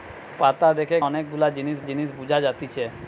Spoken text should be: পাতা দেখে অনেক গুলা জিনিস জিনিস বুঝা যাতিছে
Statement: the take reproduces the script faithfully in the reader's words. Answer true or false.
true